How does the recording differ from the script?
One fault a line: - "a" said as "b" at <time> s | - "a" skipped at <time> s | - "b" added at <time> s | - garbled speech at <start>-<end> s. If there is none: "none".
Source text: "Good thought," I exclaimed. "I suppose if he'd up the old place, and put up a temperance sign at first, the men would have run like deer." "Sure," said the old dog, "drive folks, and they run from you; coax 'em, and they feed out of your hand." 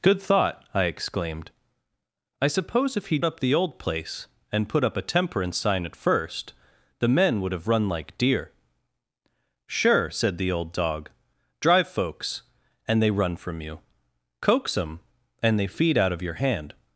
none